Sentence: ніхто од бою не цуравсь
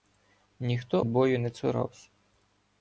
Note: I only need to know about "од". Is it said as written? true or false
false